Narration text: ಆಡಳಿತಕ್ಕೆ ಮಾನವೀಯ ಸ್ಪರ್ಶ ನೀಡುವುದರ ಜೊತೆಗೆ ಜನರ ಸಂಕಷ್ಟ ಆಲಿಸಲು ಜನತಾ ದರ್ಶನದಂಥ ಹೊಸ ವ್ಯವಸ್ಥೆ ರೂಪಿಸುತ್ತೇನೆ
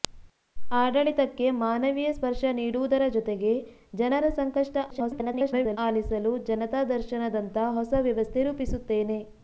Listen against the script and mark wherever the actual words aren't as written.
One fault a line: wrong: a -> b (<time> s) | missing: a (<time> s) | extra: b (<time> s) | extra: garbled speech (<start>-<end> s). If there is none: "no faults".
extra: garbled speech (4.9-5.8 s)